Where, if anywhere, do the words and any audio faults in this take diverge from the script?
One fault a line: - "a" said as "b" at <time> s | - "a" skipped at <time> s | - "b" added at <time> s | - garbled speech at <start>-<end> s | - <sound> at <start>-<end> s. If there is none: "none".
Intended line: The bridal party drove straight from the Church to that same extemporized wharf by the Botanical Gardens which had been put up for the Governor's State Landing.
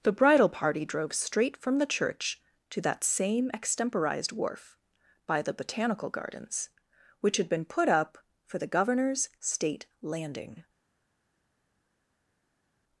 none